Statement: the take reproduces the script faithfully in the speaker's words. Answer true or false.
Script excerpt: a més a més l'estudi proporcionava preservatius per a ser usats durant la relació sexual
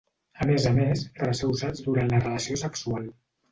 false